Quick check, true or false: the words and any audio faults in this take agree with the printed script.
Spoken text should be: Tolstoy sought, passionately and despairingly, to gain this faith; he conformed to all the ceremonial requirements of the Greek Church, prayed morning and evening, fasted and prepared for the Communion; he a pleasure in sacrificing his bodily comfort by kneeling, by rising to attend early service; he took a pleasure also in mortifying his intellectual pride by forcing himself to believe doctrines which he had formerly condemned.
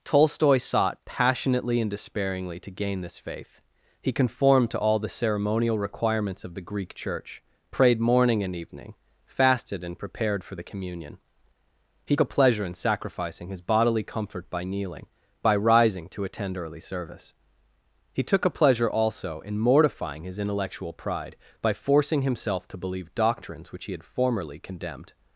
true